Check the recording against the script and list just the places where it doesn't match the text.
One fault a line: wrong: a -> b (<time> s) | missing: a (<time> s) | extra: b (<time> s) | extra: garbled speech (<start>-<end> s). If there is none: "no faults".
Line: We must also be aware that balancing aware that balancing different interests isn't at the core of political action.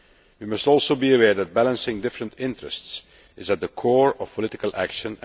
missing: aware that balancing (2.0 s)
wrong: isn't -> is (3.4 s)